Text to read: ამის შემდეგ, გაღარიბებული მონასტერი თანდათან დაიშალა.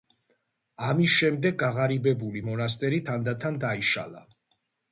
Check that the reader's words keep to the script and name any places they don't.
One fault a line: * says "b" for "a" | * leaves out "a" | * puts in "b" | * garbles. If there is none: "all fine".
all fine